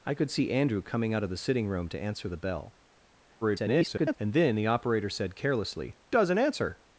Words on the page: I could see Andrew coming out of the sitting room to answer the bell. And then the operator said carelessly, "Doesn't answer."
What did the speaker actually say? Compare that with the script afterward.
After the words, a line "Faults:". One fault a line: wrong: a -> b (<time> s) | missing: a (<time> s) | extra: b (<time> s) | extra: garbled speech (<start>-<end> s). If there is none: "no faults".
I could see Andrew coming out of the sitting room to answer the bell. [garbled] And then the operator said carelessly, "Doesn't answer."
Faults:
extra: garbled speech (3.4-4.2 s)